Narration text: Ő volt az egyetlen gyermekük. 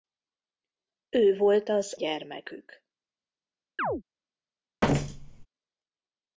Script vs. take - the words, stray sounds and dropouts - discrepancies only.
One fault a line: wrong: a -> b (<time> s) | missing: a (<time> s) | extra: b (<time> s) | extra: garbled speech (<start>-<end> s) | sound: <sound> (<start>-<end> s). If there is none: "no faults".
missing: egyetlen (2.0 s)
sound: chirp (3.8-4.0 s)
sound: thud (4.8-5.5 s)